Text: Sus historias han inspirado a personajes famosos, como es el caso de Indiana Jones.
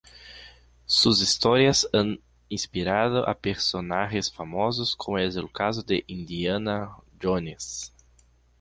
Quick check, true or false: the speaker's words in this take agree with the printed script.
true